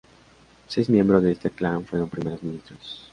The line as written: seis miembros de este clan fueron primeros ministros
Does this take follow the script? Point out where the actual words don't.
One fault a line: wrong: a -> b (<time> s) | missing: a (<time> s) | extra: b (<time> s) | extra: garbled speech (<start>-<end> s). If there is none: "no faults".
no faults